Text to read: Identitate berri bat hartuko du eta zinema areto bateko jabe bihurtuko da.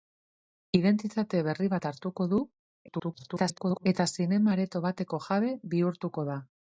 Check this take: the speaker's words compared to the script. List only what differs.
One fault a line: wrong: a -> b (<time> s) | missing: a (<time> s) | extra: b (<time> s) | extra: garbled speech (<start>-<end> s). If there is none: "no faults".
extra: garbled speech (2.9-3.9 s)